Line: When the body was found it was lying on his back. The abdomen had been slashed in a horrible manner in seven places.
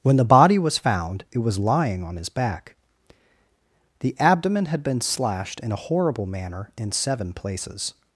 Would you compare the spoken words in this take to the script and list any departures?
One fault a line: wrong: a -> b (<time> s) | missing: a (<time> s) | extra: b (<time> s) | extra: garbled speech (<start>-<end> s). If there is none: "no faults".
no faults